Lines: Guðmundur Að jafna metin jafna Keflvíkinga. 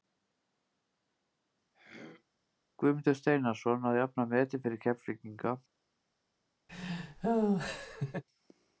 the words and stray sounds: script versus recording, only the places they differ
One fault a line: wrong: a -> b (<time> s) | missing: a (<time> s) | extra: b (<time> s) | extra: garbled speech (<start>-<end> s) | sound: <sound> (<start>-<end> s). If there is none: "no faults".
sound: throat clearing (1.7-2.2 s)
extra: Steinarsson (3.2 s)
wrong: jafna -> fyrir (4.7 s)
sound: laugh (6.7-8.2 s)